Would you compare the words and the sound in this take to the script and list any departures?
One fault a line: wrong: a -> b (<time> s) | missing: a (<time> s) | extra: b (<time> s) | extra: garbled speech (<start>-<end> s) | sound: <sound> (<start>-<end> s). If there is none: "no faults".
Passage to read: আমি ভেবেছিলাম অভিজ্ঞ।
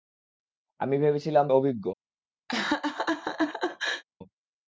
sound: laugh (2.5-4.0 s)